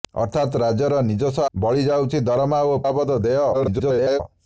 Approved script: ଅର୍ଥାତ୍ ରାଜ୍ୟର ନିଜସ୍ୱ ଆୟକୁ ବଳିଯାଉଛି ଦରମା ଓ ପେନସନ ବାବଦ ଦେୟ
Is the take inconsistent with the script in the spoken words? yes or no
yes